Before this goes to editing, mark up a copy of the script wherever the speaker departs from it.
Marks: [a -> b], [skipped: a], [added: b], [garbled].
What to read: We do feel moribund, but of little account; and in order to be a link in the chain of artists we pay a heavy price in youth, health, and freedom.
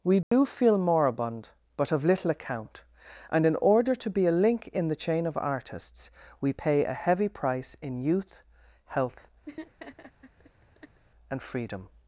We do feel moribund, but of little account; and in order to be a link in the chain of artists we pay a heavy price in youth, health, and freedom.